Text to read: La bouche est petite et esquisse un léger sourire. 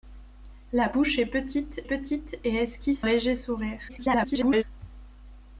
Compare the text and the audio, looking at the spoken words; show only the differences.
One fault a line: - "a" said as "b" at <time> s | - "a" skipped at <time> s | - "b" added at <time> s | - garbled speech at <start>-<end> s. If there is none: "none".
- "petite" added at 1.8 s
- "un" skipped at 3.0 s
- garbled speech at 3.9-4.6 s